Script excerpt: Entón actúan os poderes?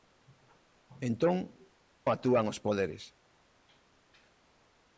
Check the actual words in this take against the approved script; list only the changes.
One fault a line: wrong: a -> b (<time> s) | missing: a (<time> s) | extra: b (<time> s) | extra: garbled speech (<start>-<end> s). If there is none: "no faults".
no faults